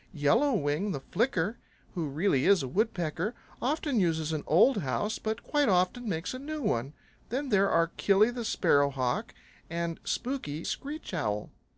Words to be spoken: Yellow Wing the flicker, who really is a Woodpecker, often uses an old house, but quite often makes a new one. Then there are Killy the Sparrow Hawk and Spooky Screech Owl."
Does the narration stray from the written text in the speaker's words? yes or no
no